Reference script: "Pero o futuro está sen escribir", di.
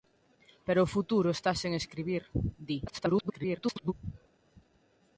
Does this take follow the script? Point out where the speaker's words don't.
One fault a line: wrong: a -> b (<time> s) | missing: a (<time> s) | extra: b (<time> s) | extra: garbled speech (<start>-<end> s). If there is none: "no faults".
extra: garbled speech (2.9-3.9 s)